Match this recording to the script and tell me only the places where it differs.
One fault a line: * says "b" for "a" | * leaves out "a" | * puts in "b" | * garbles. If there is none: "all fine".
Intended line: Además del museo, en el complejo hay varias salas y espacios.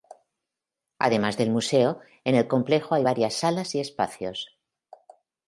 all fine